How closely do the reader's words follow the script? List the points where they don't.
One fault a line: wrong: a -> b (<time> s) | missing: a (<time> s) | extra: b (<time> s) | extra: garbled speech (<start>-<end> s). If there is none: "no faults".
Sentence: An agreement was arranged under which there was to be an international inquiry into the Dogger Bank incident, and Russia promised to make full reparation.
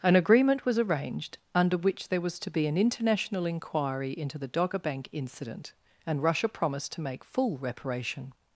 no faults